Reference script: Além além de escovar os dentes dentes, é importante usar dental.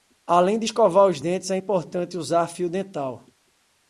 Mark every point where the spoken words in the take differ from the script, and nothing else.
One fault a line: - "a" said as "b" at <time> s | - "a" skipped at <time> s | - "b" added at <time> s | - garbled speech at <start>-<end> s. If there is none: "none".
- "além" skipped at 0.6 s
- "dentes" skipped at 1.5 s
- "fio" added at 2.5 s